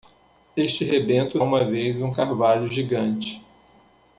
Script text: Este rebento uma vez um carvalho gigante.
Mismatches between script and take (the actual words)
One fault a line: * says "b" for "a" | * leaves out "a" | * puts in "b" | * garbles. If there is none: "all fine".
all fine